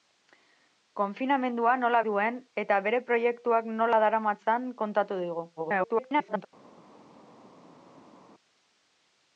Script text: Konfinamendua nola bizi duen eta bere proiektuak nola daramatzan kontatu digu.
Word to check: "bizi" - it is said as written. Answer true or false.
false